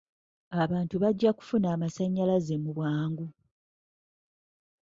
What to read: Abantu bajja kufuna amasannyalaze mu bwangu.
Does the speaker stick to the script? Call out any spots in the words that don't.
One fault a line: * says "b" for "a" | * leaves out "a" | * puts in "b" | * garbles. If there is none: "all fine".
all fine